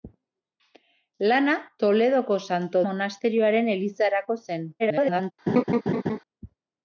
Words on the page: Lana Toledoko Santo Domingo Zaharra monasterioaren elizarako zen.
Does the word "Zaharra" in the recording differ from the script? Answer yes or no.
yes